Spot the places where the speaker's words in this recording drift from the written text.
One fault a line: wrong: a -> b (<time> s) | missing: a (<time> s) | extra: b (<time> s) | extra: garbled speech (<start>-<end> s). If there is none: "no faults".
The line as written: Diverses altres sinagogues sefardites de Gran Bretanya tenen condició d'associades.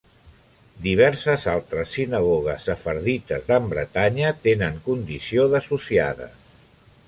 missing: de (3.5 s)